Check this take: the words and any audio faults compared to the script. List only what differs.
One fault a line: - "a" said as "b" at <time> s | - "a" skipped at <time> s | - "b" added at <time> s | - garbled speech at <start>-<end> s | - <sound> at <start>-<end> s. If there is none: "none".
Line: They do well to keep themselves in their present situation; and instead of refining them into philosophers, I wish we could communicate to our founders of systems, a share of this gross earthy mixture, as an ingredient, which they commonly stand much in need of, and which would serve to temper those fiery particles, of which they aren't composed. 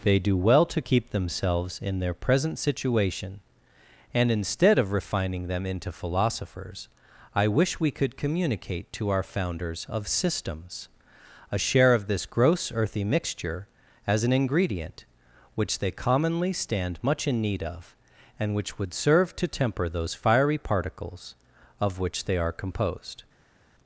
- "aren't" said as "are" at 22.4 s